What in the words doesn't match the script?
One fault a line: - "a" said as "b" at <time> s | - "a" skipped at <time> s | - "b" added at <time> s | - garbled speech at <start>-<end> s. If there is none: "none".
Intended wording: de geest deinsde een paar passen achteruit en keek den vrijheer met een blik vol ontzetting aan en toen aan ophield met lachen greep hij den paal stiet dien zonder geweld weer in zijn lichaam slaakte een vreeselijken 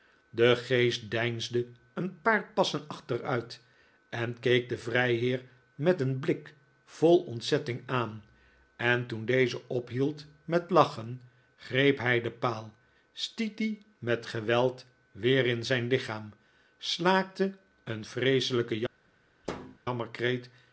- "aan" said as "deze" at 9.2 s
- "zonder" said as "met" at 14.0 s